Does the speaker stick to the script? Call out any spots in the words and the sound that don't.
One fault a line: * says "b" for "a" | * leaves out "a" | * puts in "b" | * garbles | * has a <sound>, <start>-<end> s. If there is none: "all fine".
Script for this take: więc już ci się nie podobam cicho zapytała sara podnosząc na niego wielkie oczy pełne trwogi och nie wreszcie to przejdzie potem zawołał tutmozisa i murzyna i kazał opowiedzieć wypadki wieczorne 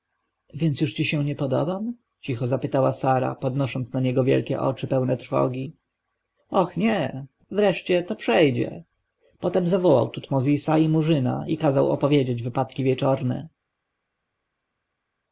all fine